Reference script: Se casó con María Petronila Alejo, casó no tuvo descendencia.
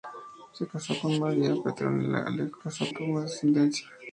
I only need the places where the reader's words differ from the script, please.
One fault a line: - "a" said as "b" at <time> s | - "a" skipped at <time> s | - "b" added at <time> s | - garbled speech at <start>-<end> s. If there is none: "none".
none